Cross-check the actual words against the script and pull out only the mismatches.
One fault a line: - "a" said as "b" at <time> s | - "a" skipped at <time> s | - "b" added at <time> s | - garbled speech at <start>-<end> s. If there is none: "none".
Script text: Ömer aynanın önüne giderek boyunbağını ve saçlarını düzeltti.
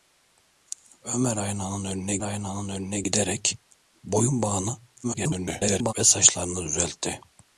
- "aynanın önüne" added at 2.2 s
- garbled speech at 5.0-5.9 s